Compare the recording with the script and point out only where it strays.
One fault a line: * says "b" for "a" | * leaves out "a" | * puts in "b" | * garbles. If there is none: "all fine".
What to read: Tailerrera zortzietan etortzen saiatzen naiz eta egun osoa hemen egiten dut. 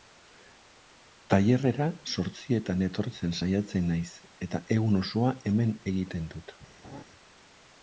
all fine